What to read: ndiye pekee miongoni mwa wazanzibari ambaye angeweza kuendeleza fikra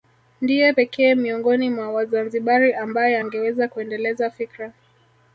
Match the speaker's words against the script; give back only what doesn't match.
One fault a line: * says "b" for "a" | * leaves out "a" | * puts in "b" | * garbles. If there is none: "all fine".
all fine